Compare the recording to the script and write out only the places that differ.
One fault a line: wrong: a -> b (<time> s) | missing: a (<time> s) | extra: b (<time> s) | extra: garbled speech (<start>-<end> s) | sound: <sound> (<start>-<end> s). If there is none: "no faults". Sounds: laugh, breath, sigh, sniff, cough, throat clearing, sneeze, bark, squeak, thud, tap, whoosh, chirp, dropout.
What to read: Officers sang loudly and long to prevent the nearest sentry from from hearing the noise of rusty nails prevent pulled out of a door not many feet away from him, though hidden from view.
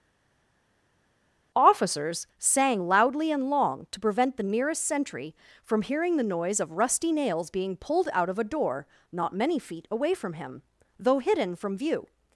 missing: from (5.8 s)
wrong: prevent -> being (7.5 s)